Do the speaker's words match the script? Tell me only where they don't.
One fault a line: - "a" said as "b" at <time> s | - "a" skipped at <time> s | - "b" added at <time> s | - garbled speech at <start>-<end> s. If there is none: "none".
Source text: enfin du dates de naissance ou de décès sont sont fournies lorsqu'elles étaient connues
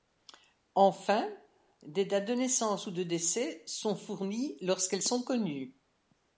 - "du" said as "des" at 1.8 s
- "sont" skipped at 4.0 s
- "étaient" said as "sont" at 5.0 s